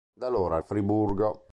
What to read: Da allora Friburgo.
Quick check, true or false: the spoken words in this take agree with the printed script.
true